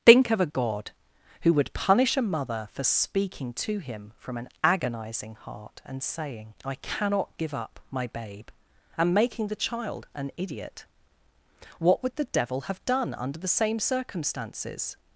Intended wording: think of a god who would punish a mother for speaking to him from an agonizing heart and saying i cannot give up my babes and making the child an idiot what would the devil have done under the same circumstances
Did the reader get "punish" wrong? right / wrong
right